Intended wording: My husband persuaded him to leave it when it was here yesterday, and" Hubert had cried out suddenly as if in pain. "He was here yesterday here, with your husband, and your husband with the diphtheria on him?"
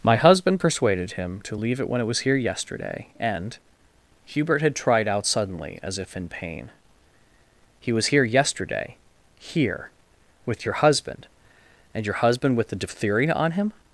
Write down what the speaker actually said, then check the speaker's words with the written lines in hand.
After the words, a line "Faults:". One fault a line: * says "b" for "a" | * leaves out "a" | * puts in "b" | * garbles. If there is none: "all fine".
My husband persuaded him to leave it when it was here yesterday, and" Hubert had tried out suddenly as if in pain. "He was here yesterday here, with your husband, and your husband with the diphtheria on him?"
Faults:
* says "tried" for "cried"